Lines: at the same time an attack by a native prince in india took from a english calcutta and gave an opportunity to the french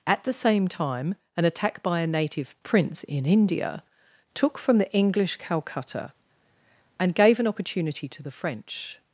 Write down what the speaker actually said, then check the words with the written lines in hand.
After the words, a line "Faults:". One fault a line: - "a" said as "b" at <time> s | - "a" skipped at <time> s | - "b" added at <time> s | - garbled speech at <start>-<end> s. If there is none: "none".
at the same time an attack by a native prince in india took from the english calcutta and gave an opportunity to the french
Faults:
- "a" said as "the" at 4.8 s